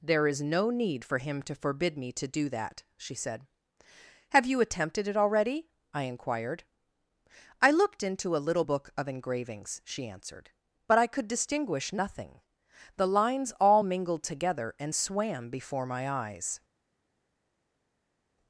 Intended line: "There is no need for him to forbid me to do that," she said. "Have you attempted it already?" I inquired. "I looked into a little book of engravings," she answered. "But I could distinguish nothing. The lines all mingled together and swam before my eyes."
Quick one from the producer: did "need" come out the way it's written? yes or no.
yes